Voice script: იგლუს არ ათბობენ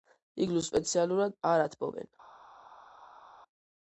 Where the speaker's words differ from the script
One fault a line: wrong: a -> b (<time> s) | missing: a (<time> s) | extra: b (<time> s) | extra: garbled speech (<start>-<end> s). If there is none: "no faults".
extra: სპეციალურად (0.7 s)